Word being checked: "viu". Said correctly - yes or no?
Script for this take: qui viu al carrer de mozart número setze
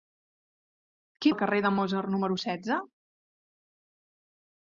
no